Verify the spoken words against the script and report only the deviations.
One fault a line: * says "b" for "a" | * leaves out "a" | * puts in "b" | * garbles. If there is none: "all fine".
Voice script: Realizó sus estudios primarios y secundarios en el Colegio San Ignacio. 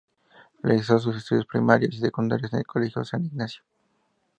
all fine